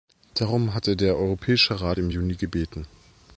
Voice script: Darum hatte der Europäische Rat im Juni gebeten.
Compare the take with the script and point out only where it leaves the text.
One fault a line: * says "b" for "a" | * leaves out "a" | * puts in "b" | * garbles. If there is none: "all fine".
all fine